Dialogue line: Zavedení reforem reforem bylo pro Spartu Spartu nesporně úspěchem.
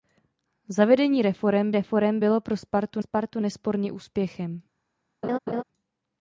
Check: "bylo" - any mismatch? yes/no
no